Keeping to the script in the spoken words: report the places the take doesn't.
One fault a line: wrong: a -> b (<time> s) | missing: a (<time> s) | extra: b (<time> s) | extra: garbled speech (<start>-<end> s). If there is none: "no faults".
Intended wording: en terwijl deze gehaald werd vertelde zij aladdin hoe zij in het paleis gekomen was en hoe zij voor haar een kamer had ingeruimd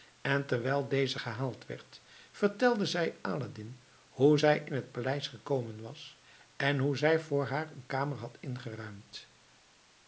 no faults